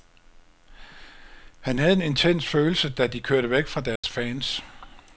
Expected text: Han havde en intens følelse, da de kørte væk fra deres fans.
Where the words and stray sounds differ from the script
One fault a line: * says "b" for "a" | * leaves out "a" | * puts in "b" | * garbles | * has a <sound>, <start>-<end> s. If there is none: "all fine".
* has a dropout, 4.0-4.0 s